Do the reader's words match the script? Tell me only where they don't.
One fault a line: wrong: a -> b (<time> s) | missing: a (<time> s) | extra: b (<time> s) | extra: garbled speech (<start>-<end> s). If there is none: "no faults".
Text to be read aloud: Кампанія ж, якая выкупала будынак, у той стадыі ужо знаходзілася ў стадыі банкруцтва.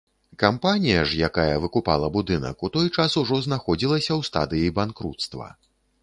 wrong: стадыі -> час (3.0 s)